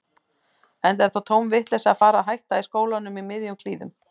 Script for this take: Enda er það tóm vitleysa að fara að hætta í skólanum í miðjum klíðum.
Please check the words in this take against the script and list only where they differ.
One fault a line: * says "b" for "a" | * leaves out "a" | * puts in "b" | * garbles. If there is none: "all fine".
all fine